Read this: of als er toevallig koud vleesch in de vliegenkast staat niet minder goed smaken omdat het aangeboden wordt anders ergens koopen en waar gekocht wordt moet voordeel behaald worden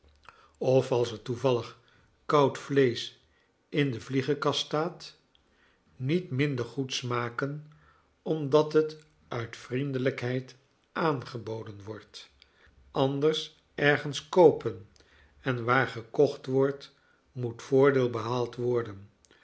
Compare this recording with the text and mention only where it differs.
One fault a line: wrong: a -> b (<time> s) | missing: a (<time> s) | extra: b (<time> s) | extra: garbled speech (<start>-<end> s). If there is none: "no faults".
extra: uit vriendelijkheid (9.3 s)